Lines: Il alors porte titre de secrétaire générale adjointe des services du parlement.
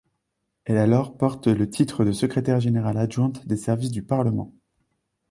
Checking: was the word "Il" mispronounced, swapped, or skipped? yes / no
yes